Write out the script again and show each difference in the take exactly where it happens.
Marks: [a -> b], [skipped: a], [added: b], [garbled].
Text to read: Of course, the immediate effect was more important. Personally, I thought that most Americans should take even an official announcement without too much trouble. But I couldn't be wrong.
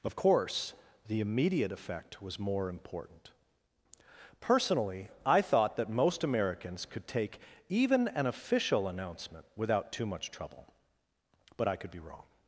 Of course, the immediate effect was more important. Personally, I thought that most Americans [should -> could] take even an official announcement without too much trouble. But I [couldn't -> could] be wrong.